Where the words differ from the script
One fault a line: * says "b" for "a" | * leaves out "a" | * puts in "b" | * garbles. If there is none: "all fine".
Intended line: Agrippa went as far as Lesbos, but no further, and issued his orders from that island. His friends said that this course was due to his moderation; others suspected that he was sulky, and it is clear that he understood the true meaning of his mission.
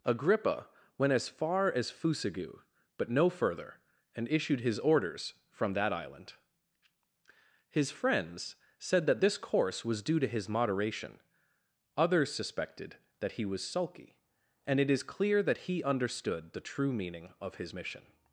* says "Fusagu" for "Lesbos"